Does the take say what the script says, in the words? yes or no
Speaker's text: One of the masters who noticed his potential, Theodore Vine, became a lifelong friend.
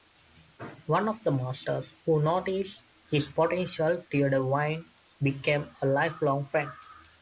yes